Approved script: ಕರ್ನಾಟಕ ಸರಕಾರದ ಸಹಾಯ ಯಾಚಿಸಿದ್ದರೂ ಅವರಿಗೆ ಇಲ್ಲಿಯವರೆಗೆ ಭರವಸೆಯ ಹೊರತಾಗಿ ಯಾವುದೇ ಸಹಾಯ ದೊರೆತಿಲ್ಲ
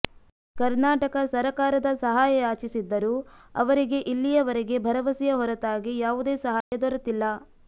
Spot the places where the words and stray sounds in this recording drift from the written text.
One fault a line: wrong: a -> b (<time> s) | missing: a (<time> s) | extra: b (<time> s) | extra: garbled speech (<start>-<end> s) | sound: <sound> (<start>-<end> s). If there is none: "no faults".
sound: dropout (6.6-6.7 s)